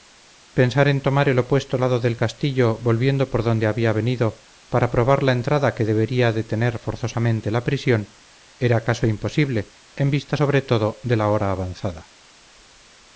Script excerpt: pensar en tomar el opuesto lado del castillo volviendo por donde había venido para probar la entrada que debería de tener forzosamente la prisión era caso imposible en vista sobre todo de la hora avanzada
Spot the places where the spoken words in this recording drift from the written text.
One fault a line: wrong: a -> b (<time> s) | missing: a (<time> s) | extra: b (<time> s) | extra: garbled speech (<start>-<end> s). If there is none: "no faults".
no faults